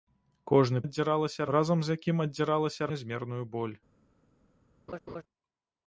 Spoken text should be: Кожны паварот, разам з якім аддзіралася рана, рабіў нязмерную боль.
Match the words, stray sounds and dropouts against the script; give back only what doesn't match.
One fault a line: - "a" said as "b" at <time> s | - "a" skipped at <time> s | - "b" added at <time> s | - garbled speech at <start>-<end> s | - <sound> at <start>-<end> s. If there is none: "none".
- "паварот" said as "аддзіралася" at 0.8 s
- "рана рабіў" skipped at 2.9 s
- laugh at 4.9-5.2 s